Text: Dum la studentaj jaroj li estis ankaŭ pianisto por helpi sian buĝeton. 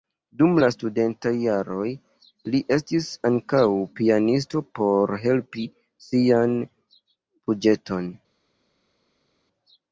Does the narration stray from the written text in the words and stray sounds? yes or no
no